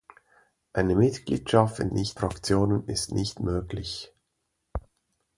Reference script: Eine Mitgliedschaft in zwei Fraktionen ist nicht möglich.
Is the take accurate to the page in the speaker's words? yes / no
no